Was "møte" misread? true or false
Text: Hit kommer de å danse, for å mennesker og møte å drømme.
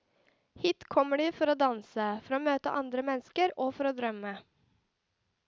true